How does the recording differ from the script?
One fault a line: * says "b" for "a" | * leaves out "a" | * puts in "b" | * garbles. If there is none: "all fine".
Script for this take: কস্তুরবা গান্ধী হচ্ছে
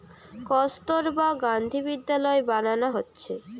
* puts in "বিদ্যালয় বানানা"